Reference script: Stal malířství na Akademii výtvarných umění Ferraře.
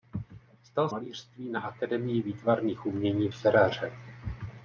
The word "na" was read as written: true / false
true